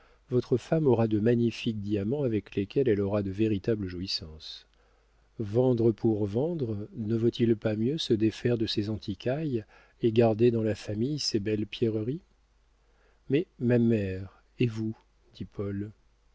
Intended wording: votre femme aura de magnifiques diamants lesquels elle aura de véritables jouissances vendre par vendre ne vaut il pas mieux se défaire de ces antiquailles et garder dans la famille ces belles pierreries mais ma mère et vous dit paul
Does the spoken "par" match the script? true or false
false